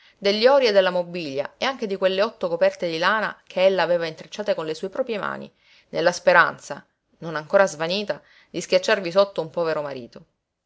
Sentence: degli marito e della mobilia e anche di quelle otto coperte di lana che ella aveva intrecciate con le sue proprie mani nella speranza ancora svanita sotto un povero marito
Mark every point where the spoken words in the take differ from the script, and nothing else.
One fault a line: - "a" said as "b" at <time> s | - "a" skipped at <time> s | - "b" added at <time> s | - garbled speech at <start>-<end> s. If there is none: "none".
- "marito" said as "ori" at 0.5 s
- "non" added at 7.2 s
- "di schiacciarvi" added at 8.5 s